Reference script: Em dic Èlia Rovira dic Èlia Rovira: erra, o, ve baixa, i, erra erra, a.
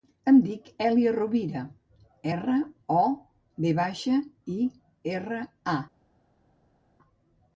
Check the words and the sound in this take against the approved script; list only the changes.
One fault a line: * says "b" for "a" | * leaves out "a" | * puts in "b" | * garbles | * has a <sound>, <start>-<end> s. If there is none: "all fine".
* leaves out "dic Èlia Rovira"
* leaves out "erra"